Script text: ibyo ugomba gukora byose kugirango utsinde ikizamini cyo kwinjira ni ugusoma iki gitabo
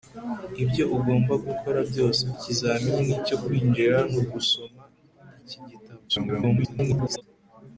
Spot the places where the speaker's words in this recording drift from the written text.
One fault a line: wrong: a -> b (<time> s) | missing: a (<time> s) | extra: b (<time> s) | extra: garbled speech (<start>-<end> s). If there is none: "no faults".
missing: kugirango utsinde (2.2 s)
extra: garbled speech (6.1-7.2 s)